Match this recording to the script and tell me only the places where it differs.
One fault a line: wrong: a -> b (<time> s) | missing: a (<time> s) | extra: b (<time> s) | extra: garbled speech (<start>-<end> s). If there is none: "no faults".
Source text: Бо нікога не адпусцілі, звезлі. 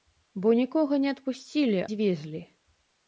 no faults